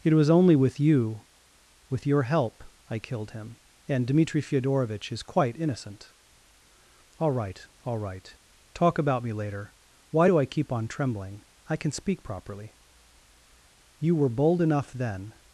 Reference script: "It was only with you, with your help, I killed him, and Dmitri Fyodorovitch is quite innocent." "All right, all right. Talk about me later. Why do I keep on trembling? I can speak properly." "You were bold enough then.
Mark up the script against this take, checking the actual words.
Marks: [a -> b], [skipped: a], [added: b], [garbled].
"It was only with you, with your help, I killed him, and Dmitri Fyodorovitch is quite innocent." "All right, all right. Talk about me later. Why do I keep on trembling? I can speak properly." "You were bold enough then.